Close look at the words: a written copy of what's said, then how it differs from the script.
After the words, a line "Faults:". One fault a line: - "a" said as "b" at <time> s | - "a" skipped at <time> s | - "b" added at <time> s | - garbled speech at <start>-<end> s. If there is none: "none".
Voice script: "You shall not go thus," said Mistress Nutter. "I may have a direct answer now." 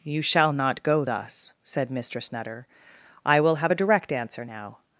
"You shall not go thus," said Mistress Nutter. "I will have a direct answer now."
Faults:
- "may" said as "will" at 3.4 s